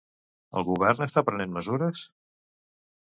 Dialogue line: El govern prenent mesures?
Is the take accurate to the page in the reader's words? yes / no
no